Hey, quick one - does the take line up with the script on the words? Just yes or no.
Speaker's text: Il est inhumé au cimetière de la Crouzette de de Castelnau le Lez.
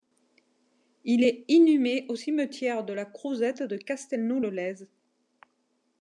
no